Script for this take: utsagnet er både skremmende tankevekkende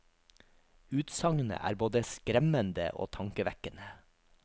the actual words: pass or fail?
fail